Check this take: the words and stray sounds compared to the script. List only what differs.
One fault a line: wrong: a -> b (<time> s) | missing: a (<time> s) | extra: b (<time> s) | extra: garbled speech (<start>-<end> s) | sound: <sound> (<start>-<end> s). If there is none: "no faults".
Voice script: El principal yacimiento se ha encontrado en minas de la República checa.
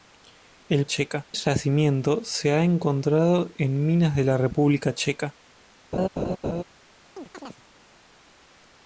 wrong: principal -> checa (0.8 s)
sound: laugh (5.9-6.6 s)
sound: chirp (7.2-7.6 s)